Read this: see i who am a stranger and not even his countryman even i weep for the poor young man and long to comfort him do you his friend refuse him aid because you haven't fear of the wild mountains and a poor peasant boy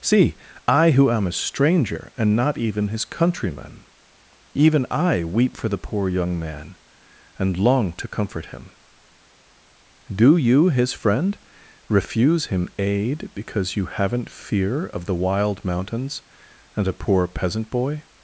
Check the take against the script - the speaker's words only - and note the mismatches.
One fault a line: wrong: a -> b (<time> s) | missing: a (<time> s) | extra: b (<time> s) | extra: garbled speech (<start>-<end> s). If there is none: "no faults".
no faults